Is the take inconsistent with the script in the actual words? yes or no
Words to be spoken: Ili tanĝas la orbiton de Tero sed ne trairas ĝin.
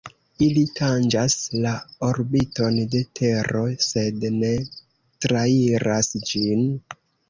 no